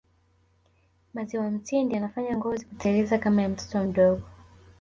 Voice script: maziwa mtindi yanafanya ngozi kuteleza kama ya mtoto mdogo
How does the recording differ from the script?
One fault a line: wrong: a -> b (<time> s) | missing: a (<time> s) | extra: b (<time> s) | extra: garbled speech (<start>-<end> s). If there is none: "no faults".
no faults